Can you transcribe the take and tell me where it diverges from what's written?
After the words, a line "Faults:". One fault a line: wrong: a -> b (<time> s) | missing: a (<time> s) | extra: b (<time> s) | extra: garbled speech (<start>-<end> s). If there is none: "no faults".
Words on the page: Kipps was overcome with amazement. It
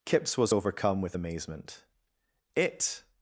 Kipps was overcome with amazement. It
Faults:
no faults